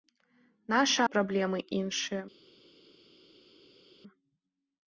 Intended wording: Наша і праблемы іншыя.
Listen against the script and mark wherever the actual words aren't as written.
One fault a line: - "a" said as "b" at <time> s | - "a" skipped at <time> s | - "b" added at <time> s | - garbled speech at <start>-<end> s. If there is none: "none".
none